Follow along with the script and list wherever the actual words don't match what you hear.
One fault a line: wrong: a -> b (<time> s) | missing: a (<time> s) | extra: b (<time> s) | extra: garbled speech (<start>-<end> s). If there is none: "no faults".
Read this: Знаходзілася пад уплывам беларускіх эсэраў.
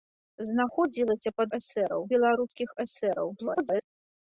wrong: уплывам -> эсэраў (1.6 s)
extra: garbled speech (3.4-3.8 s)